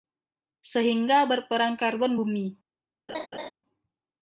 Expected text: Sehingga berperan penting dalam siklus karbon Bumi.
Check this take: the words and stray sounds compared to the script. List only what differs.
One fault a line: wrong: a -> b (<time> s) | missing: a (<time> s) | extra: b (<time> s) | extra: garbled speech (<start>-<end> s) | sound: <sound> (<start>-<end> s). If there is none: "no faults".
missing: penting dalam siklus (1.8 s)
sound: laugh (3.1-3.5 s)